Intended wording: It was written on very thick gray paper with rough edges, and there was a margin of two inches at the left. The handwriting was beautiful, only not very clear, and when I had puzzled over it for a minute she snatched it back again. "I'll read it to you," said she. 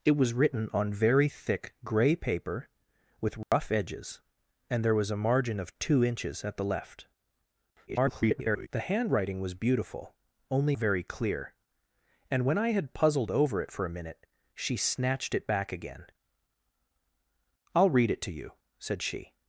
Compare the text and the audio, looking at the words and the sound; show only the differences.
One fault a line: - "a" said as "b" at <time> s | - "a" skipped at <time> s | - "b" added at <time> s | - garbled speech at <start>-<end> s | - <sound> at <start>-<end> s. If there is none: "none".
- dropout at 3.4-3.5 s
- garbled speech at 7.9-8.7 s
- "not" skipped at 10.8 s